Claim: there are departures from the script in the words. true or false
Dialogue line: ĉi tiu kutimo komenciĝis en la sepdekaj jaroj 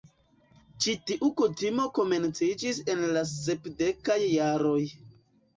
false